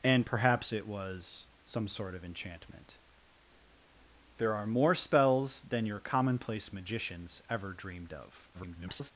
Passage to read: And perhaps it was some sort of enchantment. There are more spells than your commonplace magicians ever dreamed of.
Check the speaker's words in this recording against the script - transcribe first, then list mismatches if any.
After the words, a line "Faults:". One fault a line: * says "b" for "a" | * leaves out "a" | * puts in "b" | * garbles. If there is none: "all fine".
And perhaps it was some sort of enchantment. There are more spells than your commonplace magicians ever dreamed of. [garbled]
Faults:
* garbles